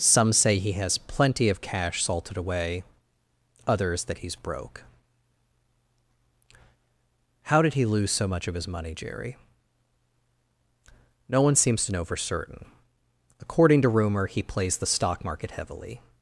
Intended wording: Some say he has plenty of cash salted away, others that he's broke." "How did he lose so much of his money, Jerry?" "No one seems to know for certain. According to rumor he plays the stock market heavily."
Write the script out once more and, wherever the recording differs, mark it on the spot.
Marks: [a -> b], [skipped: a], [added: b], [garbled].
Some say he has plenty of cash salted away, others that he's broke." "How did he lose so much of his money, Jerry?" "No one seems to know for certain. According to rumor he plays the stock market heavily."